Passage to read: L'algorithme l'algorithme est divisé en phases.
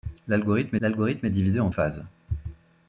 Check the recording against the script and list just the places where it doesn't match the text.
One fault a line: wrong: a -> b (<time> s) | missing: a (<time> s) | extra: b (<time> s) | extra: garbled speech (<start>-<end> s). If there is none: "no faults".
no faults